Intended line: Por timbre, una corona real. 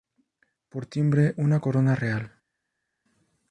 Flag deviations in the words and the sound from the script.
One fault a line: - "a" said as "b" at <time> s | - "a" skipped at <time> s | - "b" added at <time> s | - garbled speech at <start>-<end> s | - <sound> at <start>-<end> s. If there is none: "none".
none